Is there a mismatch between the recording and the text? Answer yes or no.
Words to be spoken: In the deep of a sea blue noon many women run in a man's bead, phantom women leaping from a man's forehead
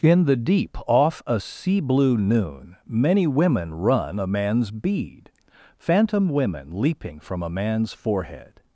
yes